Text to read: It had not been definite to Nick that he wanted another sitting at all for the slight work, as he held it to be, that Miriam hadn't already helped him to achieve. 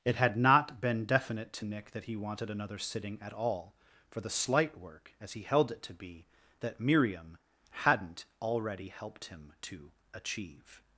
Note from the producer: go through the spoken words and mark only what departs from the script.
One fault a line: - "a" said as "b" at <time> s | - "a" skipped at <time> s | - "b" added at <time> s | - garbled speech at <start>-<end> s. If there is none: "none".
none